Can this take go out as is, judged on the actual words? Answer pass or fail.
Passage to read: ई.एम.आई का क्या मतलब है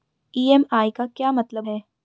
pass